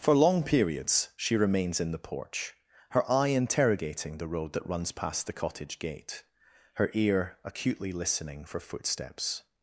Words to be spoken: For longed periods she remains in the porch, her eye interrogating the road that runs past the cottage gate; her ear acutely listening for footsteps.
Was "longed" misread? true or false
true